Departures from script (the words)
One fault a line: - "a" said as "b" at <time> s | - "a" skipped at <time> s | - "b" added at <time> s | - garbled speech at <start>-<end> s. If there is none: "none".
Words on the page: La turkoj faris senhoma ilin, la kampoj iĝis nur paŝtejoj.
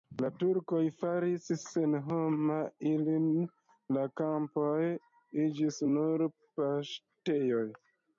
none